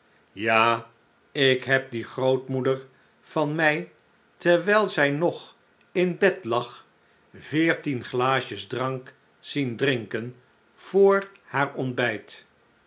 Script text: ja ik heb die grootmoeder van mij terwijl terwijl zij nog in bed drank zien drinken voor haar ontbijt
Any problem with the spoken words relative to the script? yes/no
yes